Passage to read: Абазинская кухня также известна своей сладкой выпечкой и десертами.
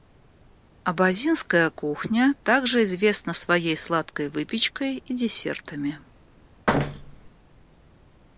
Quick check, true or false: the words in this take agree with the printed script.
true